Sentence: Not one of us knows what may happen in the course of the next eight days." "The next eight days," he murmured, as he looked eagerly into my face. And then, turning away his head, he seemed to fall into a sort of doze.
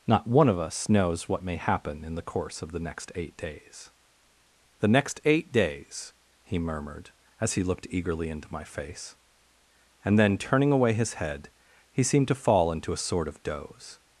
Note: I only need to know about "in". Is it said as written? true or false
true